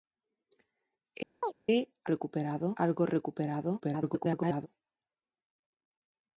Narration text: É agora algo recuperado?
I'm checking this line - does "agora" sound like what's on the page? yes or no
no